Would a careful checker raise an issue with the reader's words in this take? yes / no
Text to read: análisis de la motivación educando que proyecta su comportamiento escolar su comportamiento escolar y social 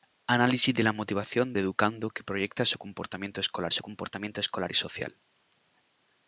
no